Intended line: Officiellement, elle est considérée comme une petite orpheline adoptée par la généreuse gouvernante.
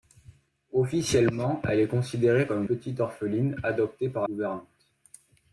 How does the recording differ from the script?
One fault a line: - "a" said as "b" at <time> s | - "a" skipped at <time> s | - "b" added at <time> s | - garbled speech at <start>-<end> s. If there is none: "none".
- "une" skipped at 2.6 s
- "la généreuse" skipped at 4.3 s